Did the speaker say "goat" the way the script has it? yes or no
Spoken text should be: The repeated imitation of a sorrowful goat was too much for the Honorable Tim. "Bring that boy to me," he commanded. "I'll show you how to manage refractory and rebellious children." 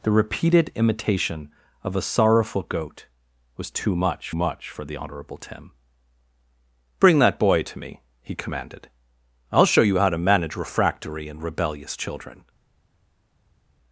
yes